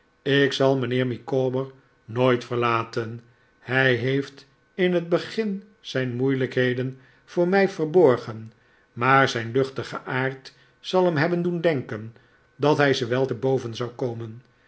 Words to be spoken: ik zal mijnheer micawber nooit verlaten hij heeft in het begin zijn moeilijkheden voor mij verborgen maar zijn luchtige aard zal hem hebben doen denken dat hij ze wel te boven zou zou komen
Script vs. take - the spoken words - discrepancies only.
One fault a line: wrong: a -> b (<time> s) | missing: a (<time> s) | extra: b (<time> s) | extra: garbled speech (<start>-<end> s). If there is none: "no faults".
missing: zou (13.9 s)